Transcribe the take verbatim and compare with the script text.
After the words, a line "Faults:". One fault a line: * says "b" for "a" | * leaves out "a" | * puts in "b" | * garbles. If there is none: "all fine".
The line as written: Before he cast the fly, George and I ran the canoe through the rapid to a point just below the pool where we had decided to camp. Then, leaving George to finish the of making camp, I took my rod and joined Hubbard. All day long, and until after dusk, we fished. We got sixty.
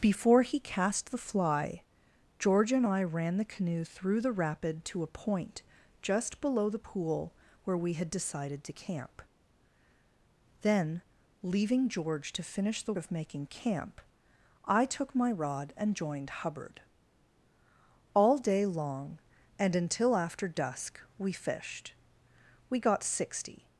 Before he cast the fly, George and I ran the canoe through the rapid to a point just below the pool where we had decided to camp. Then, leaving George to finish the of making camp, I took my rod and joined Hubbard. All day long, and until after dusk, we fished. We got sixty.
Faults:
all fine